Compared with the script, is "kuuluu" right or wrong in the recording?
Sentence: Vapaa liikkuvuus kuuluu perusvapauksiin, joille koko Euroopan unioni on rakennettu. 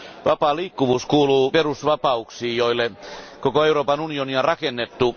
right